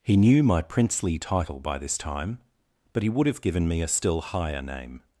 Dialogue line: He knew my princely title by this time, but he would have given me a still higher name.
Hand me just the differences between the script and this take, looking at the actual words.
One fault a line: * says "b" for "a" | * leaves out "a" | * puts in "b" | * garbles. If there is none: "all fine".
all fine